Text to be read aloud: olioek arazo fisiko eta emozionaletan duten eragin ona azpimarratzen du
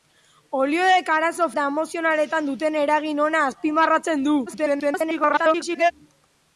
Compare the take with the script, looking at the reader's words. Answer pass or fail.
fail